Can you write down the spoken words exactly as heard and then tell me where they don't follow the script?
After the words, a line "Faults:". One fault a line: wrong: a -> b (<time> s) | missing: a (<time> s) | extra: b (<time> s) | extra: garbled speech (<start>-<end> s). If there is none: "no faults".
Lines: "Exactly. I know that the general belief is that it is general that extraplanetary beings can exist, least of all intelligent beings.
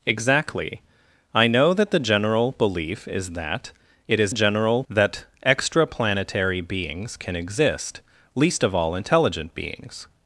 "Exactly. I know that the general belief is that it is general that extraplanetary beings can exist, least of all intelligent beings.
Faults:
no faults